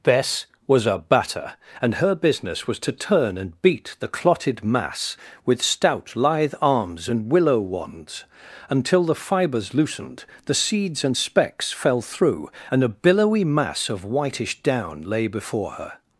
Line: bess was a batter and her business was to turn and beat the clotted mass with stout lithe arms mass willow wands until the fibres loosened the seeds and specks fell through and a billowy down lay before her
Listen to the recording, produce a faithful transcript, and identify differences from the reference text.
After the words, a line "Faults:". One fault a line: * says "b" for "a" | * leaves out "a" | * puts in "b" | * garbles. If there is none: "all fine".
bess was a batter and her business was to turn and beat the clotted mass with stout lithe arms and willow wands until the fibres loosened the seeds and specks fell through and a billowy mass of whitish down lay before her
Faults:
* says "and" for "mass"
* puts in "mass of whitish"